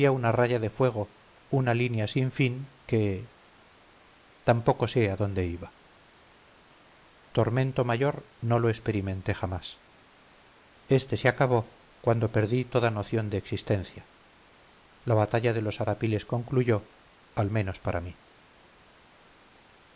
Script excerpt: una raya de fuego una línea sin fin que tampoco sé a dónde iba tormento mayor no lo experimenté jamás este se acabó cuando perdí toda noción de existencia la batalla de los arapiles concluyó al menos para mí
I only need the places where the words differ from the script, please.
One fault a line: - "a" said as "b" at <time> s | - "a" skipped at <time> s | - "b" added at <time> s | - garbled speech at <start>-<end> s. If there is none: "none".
none